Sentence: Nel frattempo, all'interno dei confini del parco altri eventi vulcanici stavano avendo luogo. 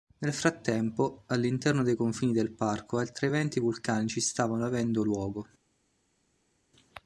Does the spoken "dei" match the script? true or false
true